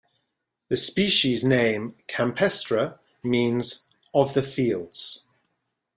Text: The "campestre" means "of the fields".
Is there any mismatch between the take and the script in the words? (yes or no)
yes